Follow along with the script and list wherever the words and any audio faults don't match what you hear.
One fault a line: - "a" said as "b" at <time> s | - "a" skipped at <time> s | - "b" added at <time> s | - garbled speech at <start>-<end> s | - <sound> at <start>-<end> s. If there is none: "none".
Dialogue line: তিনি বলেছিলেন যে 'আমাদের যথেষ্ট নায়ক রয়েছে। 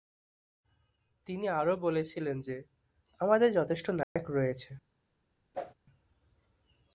- "আরও" added at 1.5 s
- dropout at 4.0-4.2 s
- whoosh at 5.5-5.7 s